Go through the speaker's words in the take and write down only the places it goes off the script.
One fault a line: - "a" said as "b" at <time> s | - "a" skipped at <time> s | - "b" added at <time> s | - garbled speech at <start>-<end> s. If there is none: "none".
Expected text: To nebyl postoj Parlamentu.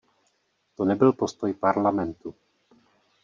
none